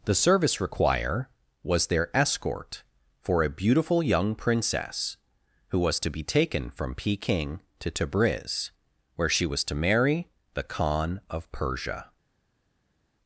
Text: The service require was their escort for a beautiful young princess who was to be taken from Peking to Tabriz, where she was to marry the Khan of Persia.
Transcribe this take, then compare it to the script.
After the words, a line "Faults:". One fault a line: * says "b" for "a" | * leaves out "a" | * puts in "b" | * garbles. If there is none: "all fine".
The service require was their escort for a beautiful young princess who was to be taken from Peking to Tabriz, where she was to marry the Khan of Persia.
Faults:
all fine